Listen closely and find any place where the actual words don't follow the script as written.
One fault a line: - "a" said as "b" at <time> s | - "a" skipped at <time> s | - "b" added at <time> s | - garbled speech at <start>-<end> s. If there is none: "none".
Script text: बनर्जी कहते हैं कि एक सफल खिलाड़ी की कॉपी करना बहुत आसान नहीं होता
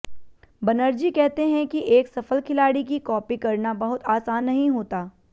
none